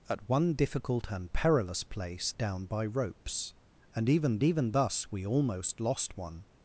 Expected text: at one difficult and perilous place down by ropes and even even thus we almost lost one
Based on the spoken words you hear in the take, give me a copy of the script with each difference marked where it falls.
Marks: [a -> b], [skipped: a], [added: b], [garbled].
at one difficult and perilous place down by ropes and even even thus we almost lost one